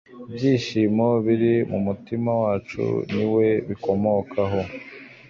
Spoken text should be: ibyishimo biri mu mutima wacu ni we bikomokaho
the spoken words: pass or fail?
pass